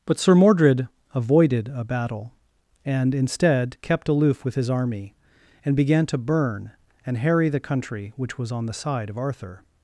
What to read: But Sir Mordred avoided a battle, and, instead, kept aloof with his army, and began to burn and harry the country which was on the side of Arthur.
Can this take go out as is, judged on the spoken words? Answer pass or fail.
pass